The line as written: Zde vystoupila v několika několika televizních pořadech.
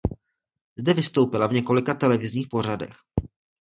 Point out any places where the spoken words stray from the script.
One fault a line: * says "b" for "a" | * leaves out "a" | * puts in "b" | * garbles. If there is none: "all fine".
* leaves out "několika"